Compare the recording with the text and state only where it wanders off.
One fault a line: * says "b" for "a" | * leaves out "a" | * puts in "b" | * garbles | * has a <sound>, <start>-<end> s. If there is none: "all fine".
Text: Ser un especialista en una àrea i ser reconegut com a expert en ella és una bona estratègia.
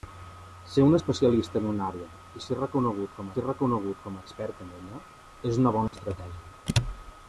* puts in "ser reconegut com"
* has a dropout, 5.9-5.9 s